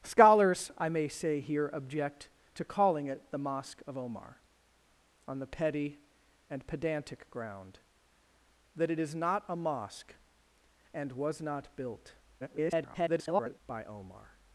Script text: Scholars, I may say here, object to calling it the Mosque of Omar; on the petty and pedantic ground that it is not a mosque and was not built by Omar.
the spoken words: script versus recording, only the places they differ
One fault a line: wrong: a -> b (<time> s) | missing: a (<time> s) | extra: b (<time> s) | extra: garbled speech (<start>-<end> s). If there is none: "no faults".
extra: garbled speech (12.4-13.6 s)